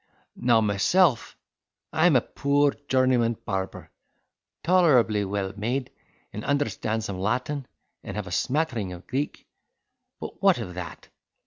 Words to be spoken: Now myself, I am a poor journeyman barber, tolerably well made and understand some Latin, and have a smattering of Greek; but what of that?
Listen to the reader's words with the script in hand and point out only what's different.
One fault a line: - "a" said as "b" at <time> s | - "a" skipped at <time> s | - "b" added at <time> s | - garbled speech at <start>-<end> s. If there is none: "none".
none